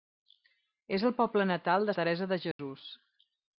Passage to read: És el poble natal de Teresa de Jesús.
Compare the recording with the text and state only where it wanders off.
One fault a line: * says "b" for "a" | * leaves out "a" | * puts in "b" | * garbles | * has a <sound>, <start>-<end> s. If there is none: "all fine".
* has a dropout, 2.5-2.6 s